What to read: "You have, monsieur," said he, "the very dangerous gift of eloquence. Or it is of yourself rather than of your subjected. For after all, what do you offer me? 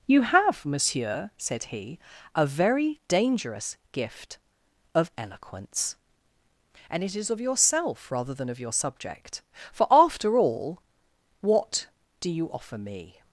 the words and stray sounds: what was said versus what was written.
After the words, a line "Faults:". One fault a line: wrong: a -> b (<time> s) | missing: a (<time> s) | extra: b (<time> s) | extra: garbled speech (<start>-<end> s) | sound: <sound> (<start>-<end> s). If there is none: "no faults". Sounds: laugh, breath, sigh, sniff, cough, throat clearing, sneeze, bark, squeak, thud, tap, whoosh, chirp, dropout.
"You have, monsieur," said he, "a very dangerous gift of eloquence. And it is of yourself rather than of your subject. For after all, what do you offer me?
Faults:
wrong: the -> a (2.3 s)
wrong: Or -> And (6.9 s)
wrong: subjected -> subject (8.7 s)